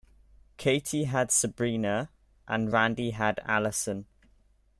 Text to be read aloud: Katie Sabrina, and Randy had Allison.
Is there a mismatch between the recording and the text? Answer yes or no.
yes